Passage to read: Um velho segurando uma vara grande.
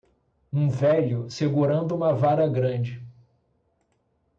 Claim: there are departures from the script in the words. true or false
false